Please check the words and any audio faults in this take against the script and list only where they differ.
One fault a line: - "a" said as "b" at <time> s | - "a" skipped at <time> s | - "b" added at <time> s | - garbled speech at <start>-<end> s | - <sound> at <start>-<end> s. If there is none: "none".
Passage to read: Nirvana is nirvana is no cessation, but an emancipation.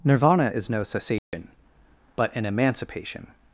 - "nirvana is" skipped at 0.7 s
- dropout at 1.2-1.3 s